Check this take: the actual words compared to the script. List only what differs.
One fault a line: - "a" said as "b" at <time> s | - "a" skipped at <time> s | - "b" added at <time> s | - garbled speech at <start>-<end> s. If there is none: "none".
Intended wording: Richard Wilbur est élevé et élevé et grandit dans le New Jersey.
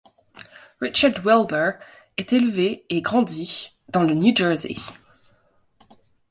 - "élevé et" skipped at 3.0 s